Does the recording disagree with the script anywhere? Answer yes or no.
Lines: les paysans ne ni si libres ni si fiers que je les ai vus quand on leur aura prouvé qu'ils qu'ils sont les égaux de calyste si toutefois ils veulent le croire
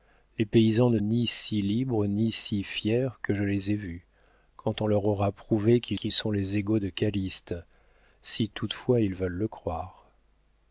no